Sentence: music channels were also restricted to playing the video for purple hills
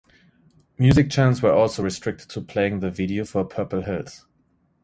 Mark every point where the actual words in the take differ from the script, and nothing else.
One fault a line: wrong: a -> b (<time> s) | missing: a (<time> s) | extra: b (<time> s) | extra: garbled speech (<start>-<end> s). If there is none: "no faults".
no faults